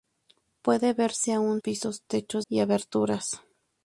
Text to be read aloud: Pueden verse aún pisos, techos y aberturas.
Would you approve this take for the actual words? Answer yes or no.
yes